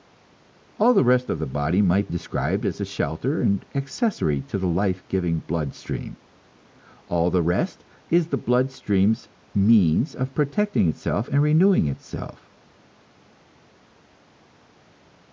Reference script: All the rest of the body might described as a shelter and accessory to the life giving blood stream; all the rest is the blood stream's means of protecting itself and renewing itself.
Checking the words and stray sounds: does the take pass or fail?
pass